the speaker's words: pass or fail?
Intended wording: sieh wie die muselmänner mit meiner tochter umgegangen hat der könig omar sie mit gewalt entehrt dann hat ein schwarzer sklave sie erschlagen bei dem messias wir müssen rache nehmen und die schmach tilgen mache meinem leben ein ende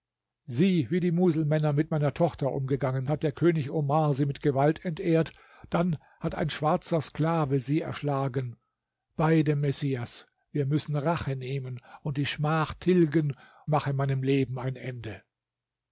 pass